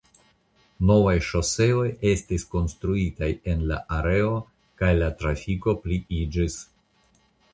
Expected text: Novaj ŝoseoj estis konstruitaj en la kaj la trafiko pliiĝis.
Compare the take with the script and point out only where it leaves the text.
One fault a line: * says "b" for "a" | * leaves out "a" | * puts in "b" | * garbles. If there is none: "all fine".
* puts in "areo"